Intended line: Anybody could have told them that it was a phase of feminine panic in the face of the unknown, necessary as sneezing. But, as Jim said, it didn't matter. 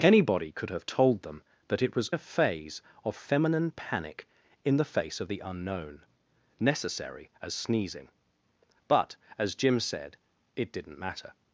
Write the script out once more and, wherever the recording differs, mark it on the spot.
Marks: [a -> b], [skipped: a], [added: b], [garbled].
Anybody could have told them that it was a phase of feminine panic in the face of the unknown, necessary as sneezing. But, as Jim said, it didn't matter.